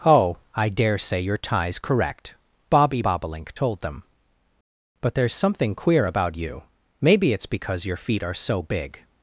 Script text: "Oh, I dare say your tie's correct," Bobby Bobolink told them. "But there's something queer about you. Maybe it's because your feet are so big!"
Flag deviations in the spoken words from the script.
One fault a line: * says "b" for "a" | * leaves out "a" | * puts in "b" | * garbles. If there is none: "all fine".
all fine